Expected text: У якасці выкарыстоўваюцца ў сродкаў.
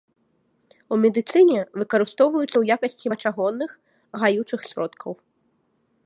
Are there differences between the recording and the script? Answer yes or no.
yes